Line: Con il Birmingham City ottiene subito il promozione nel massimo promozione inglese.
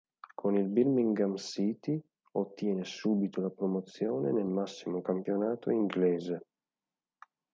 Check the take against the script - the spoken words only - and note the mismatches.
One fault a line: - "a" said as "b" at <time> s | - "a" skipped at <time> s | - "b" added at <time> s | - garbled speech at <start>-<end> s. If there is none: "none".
- "il" said as "la" at 3.4 s
- "promozione" said as "campionato" at 5.0 s